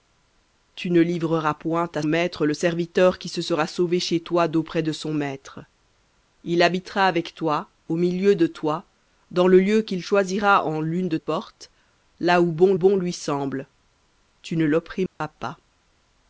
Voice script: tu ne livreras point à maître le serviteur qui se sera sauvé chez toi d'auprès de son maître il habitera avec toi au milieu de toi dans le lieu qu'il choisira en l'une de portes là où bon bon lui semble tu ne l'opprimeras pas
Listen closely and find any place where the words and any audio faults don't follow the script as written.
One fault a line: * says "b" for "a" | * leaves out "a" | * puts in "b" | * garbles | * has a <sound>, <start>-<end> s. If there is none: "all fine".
* has a dropout, 15.1-15.2 s